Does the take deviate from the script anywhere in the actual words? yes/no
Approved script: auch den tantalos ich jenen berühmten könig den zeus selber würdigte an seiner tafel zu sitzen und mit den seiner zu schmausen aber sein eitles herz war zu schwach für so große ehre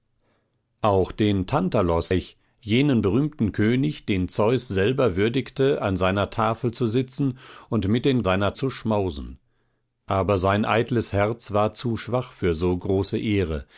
no